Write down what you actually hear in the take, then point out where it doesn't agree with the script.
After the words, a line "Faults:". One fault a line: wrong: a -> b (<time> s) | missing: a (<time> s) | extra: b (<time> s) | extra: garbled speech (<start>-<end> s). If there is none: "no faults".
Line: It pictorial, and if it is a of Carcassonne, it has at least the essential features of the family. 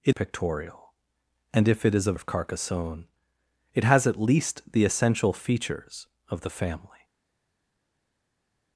It pictorial, and if it is a of Carcassonne, it has at least the essential features of the family.
Faults:
no faults